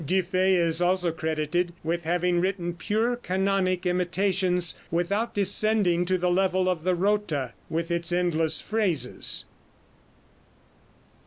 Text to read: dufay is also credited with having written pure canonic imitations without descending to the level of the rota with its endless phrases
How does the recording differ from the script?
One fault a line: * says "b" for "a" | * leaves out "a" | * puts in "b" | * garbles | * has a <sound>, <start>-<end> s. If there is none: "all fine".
all fine